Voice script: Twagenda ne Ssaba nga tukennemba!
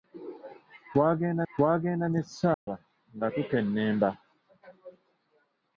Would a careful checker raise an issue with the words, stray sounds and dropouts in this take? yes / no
yes